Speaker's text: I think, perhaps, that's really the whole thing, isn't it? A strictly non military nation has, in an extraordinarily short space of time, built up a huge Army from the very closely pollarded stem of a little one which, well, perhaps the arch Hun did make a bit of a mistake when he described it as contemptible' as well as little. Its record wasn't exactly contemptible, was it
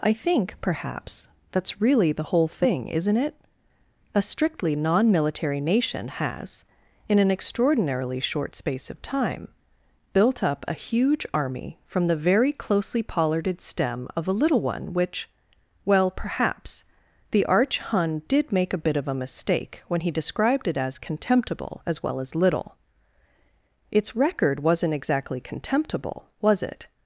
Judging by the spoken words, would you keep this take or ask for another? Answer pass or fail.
pass